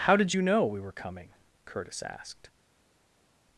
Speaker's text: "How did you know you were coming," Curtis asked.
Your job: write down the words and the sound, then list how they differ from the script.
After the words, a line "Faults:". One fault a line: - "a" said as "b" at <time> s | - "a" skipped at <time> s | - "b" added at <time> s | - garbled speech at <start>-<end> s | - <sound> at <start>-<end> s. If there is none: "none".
"How did you know we were coming," Curtis asked.
Faults:
- "you" said as "we" at 0.6 s